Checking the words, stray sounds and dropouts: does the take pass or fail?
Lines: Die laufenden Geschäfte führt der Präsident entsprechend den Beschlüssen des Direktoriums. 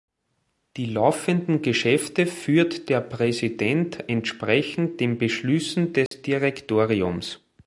fail